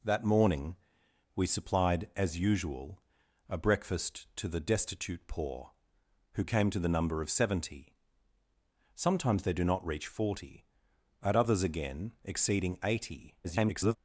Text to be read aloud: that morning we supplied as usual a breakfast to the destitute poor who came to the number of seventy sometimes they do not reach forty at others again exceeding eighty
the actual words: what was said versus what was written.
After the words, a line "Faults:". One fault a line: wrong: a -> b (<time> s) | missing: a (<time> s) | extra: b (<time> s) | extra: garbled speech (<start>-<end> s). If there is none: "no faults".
that morning we supplied as usual a breakfast to the destitute poor who came to the number of seventy sometimes they do not reach forty at others again exceeding eighty [garbled]
Faults:
extra: garbled speech (13.4-14.0 s)